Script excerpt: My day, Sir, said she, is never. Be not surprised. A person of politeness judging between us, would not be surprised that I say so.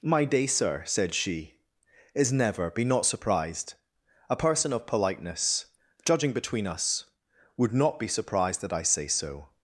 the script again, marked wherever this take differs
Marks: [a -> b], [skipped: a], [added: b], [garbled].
My day, Sir, said she, is never. Be not surprised. A person of politeness judging between us, would not be surprised that I say so.